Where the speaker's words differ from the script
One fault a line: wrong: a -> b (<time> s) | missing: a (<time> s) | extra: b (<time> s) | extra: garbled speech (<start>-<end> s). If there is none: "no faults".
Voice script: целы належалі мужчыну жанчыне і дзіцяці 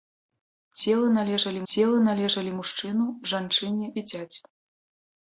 extra: целы належалі (1.7 s)
missing: і (3.9 s)